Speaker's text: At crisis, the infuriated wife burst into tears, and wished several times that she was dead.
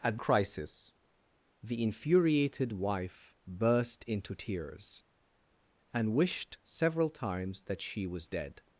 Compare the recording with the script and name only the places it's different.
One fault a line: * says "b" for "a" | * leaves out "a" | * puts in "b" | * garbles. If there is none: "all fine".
all fine